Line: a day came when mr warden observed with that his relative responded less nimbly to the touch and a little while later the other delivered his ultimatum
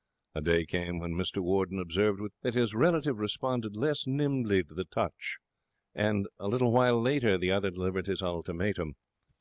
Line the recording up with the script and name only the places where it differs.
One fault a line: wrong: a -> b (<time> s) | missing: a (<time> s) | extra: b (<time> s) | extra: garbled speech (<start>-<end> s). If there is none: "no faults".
no faults